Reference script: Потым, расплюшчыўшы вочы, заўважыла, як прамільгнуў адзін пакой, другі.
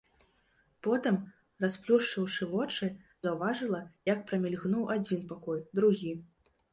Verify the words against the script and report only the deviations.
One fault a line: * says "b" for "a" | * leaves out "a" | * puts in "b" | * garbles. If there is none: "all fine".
all fine